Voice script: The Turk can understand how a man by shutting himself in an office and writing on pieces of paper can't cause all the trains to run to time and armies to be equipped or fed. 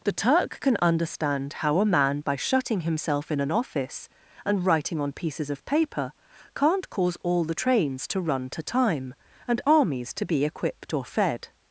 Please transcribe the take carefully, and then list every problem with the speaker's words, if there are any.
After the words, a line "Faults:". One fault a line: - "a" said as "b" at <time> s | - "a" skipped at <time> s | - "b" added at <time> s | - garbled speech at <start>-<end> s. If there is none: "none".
The Turk can understand how a man by shutting himself in an office and writing on pieces of paper can't cause all the trains to run to time and armies to be equipped or fed.
Faults:
none